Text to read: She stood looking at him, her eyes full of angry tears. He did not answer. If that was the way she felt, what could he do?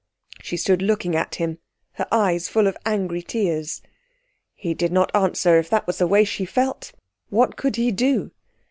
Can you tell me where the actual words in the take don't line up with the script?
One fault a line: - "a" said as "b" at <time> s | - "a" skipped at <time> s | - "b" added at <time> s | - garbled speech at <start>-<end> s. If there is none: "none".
none